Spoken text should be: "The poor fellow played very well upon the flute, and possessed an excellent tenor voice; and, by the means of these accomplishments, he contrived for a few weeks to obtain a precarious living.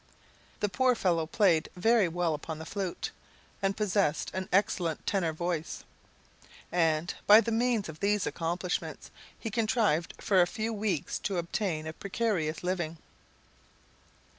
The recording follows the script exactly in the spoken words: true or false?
true